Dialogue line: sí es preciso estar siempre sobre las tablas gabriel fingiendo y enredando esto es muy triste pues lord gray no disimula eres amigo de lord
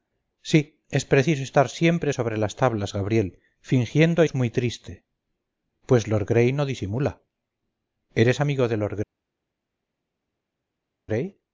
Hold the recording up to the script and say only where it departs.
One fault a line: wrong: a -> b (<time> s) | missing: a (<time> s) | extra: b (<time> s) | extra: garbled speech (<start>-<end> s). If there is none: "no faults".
missing: y enredando esto (4.2 s)